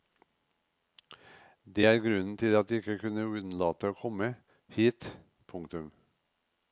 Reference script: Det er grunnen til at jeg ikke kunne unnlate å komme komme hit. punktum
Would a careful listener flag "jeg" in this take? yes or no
no